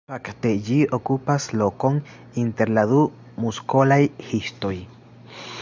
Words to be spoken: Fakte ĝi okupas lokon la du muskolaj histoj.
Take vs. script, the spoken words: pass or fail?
fail